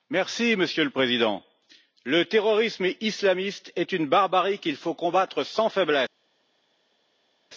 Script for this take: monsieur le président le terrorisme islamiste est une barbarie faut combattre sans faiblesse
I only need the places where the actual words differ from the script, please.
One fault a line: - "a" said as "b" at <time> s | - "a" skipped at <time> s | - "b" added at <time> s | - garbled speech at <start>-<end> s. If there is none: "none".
- "qu'il" added at 4.6 s